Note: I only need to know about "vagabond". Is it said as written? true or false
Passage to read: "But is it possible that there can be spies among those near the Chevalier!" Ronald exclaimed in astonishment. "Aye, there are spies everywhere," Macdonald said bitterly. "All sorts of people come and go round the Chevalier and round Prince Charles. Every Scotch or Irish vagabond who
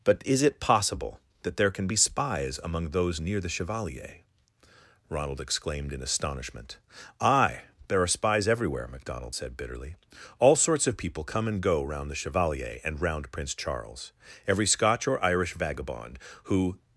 true